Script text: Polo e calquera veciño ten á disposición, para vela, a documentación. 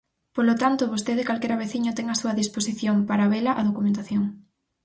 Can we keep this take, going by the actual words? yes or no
no